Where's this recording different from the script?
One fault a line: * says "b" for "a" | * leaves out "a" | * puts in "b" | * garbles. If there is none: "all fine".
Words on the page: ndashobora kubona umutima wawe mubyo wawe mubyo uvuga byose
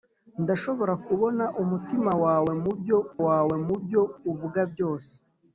all fine